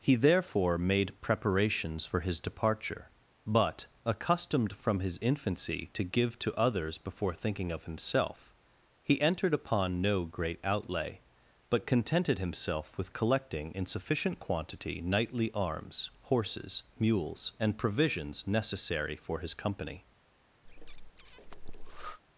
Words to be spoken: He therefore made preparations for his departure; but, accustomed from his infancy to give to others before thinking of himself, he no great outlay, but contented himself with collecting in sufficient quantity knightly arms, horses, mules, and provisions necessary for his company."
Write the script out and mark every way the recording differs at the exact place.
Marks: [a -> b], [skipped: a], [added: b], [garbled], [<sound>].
He therefore made preparations for his departure; but, accustomed from his infancy to give to others before thinking of himself, he [added: entered upon] no great outlay, but contented himself with collecting in sufficient quantity knightly arms, horses, mules, and provisions necessary for his company." [breath]